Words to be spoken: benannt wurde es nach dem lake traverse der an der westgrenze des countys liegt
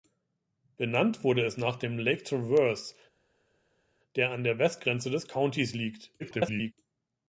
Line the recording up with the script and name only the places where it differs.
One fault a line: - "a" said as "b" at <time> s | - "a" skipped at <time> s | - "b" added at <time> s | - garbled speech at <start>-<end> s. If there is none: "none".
- garbled speech at 6.2-6.7 s